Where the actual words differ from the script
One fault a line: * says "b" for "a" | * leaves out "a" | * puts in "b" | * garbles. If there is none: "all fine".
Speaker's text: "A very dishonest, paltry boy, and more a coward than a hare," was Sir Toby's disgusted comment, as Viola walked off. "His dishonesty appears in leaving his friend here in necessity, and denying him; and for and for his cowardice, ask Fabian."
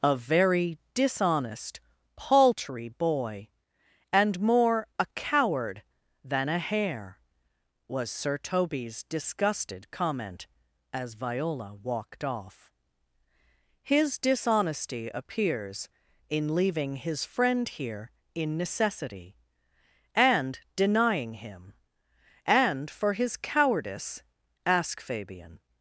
* leaves out "and for"